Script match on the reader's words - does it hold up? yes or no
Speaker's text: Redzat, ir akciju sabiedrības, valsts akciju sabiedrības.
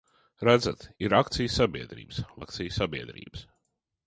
no